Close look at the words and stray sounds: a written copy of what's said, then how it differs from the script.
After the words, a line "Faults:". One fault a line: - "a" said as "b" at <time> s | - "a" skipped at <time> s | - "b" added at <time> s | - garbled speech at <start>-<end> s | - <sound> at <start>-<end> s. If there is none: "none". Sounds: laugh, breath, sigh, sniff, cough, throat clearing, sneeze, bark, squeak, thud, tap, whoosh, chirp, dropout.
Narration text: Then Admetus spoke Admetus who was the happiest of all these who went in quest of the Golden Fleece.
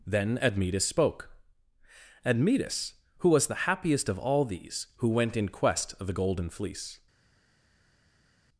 Then Admetus spoke Admetus who was the happiest of all these who went in quest of the Golden Fleece.
Faults:
none